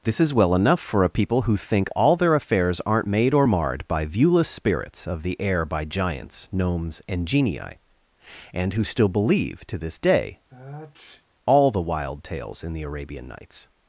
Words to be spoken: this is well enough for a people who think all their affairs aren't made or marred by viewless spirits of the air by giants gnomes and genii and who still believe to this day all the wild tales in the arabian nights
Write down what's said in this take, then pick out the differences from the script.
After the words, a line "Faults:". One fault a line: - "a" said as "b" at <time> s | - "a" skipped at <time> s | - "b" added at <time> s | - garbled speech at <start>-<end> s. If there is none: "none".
this is well enough for a people who think all their affairs aren't made or marred by viewless spirits of the air by giants gnomes and genii and who still believe to this day all the wild tales in the arabian nights
Faults:
none